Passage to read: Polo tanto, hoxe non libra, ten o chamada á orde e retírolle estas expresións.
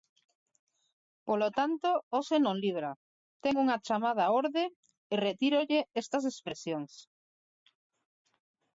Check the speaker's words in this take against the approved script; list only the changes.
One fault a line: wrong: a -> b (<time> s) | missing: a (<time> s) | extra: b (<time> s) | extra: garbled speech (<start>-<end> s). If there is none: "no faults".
wrong: o -> unha (3.6 s)